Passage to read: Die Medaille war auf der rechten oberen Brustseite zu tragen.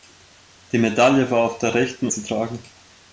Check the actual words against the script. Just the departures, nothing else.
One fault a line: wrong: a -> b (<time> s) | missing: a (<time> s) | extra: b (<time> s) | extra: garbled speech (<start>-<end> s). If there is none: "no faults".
missing: oberen Brustseite (2.1 s)